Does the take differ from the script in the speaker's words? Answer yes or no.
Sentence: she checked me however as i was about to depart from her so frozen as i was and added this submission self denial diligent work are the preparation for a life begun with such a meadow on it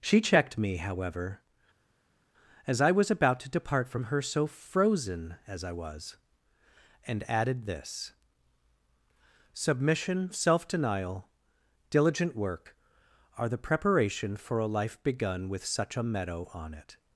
no